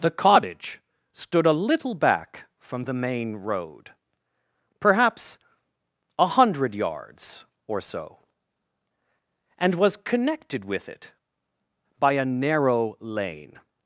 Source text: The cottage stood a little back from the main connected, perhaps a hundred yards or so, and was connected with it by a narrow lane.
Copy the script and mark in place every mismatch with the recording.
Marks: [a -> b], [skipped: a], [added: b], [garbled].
The cottage stood a little back from the main [connected, -> road] perhaps a hundred yards or so, and was connected with it by a narrow lane.